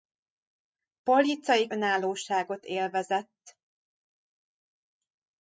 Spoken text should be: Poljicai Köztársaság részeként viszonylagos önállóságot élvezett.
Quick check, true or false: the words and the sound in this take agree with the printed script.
false